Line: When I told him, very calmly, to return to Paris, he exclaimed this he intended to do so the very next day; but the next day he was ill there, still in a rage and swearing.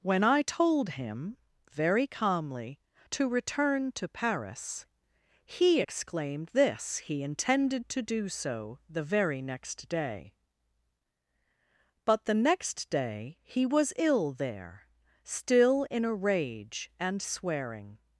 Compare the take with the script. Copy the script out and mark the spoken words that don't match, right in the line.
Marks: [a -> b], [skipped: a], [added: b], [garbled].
When I told him, very calmly, to return to Paris, he exclaimed this he intended to do so the very next day; but the next day he was ill there, still in a rage and swearing.